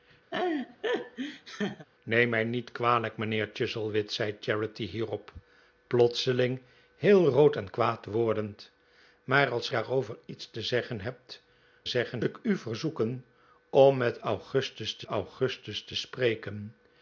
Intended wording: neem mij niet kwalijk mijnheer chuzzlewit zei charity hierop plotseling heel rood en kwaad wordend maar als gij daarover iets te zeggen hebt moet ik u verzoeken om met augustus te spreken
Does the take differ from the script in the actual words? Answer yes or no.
yes